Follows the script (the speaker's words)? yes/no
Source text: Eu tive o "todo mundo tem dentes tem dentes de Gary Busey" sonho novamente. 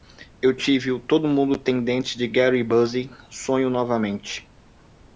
no